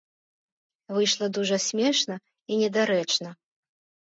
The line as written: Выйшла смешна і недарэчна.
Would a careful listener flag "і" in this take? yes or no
no